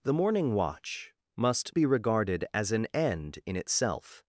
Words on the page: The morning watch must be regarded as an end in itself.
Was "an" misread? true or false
false